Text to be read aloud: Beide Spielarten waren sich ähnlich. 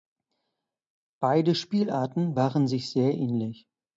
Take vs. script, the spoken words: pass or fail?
fail